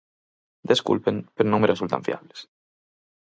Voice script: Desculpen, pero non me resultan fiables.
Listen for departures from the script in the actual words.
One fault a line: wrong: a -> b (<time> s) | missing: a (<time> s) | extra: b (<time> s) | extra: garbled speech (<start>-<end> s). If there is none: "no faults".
no faults